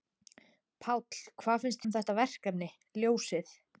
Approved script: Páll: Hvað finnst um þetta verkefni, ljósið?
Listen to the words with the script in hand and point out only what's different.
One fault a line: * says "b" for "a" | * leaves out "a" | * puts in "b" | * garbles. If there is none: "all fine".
all fine